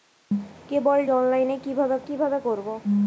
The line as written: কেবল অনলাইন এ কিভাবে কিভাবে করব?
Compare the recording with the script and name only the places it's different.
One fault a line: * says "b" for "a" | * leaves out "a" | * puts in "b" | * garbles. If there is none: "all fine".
all fine